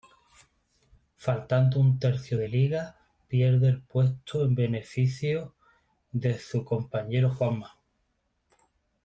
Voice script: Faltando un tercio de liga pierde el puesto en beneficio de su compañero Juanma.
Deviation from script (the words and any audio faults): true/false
false